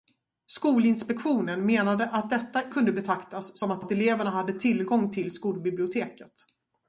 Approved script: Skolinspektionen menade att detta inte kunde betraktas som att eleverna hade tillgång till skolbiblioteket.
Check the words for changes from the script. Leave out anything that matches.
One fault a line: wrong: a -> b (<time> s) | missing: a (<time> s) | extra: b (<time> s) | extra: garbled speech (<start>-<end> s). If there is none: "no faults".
missing: inte (2.7 s)
extra: att (3.8 s)